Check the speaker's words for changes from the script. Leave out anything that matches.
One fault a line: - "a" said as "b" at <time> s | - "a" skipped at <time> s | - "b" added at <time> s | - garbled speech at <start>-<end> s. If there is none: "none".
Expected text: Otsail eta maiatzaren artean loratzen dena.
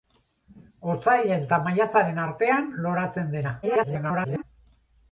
- garbled speech at 3.6-4.4 s